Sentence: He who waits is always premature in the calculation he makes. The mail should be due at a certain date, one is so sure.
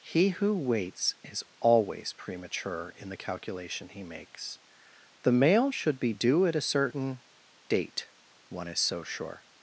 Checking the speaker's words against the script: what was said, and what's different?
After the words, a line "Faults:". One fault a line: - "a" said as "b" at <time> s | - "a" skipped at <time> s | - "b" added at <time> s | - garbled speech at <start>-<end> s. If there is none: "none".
He who waits is always premature in the calculation he makes. The mail should be due at a certain date, one is so sure.
Faults:
none